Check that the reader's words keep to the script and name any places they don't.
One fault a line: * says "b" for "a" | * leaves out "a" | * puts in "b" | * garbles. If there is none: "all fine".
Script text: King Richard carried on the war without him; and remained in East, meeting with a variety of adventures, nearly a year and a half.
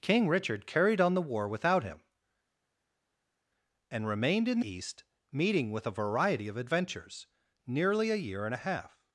all fine